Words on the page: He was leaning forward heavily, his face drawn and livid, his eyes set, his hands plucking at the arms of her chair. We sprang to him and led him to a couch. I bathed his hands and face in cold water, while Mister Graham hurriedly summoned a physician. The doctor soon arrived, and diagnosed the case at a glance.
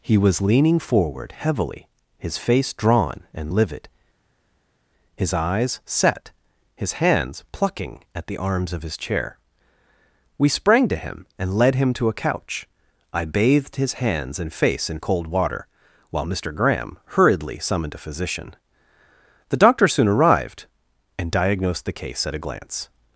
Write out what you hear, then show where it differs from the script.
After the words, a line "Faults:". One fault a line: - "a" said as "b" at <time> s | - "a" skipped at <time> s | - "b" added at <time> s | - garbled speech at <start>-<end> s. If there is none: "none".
He was leaning forward heavily, his face drawn and livid, his eyes set, his hands plucking at the arms of his chair. We sprang to him and led him to a couch. I bathed his hands and face in cold water, while Mister Graham hurriedly summoned a physician. The doctor soon arrived, and diagnosed the case at a glance.
Faults:
- "her" said as "his" at 8.8 s